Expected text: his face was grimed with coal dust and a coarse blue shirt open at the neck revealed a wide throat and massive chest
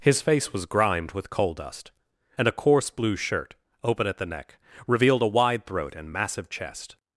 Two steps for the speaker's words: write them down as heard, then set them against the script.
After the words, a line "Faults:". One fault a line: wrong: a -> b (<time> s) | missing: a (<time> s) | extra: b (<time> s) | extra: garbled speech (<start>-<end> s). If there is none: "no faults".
his face was grimed with coal dust and a coarse blue shirt open at the neck revealed a wide throat and massive chest
Faults:
no faults